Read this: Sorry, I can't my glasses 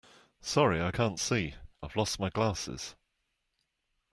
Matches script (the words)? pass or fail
fail